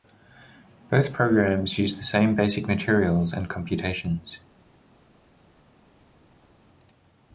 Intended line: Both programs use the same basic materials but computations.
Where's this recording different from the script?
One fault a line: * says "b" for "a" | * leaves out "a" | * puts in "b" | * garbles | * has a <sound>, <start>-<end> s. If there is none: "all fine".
* says "and" for "but"